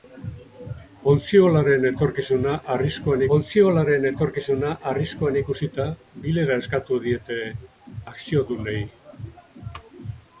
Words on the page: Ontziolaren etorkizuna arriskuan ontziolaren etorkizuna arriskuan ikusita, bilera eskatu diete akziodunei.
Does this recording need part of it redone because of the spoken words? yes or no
no